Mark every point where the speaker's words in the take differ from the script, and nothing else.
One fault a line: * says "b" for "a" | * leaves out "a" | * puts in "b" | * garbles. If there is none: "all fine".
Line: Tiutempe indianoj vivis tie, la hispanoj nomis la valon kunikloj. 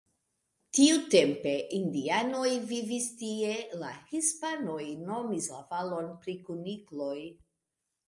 * puts in "pri"